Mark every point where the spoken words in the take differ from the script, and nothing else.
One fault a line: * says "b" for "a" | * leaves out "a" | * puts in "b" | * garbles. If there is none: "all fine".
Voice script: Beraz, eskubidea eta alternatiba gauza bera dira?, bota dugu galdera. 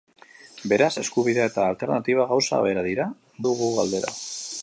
* leaves out "bota"